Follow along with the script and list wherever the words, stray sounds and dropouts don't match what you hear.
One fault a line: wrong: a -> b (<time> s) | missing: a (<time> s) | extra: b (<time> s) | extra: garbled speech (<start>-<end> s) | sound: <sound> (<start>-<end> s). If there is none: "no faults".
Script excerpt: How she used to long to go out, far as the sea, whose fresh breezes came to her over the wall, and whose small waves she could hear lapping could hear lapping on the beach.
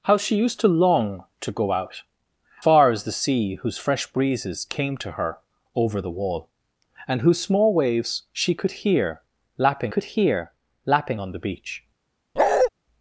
sound: bark (12.4-12.7 s)